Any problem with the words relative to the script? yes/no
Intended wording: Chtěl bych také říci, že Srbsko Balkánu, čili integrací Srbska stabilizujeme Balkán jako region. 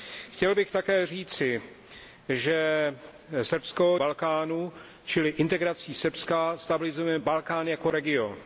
no